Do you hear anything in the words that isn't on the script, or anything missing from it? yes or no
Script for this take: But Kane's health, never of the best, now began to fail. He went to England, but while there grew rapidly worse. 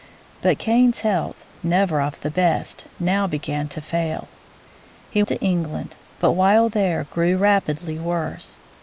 yes